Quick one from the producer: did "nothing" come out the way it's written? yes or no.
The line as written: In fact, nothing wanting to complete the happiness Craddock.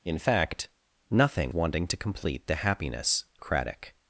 yes